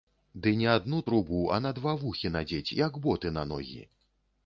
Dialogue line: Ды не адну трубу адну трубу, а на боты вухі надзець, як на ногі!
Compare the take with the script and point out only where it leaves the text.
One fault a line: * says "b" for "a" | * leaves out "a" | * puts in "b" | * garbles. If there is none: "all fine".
* leaves out "адну трубу"
* says "два" for "боты"
* puts in "боты"